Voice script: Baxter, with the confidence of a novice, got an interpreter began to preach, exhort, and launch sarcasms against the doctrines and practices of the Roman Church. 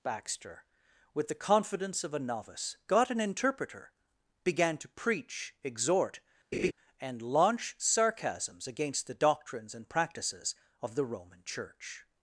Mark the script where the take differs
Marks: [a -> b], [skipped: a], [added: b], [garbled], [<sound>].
Baxter, with the confidence of a novice, got an interpreter began to preach, exhort, [laugh] and launch sarcasms against the doctrines and practices of the Roman Church.